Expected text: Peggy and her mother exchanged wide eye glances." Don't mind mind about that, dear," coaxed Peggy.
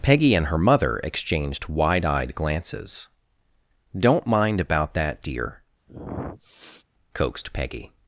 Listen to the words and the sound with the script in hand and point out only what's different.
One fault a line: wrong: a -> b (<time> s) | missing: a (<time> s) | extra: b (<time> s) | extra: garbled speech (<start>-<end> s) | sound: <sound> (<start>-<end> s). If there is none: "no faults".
wrong: eye -> eyed (2.0 s)
missing: mind (4.6 s)
sound: sniff (5.9-6.8 s)